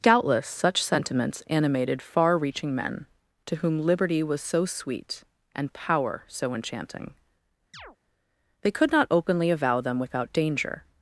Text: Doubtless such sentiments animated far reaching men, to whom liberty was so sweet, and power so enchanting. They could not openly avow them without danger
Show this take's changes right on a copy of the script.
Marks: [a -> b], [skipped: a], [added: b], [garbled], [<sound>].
Doubtless such sentiments animated far reaching men, to whom liberty was so sweet, and power so enchanting. [chirp] They could not openly avow them without danger